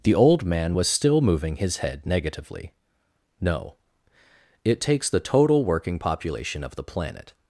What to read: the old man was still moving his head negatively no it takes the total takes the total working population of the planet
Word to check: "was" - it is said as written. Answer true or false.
true